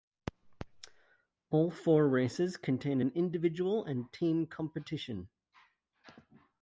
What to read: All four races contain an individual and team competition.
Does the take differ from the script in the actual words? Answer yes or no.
no